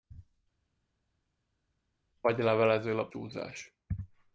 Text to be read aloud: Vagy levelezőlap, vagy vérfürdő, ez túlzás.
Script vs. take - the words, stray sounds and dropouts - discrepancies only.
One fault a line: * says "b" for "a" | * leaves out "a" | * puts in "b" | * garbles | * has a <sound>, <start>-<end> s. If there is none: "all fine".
* leaves out "vagy vérfürdő ez"